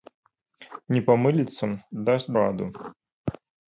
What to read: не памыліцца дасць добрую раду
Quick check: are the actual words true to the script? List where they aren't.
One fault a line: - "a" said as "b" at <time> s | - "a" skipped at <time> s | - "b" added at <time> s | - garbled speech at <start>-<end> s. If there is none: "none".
- "добрую" skipped at 2.3 s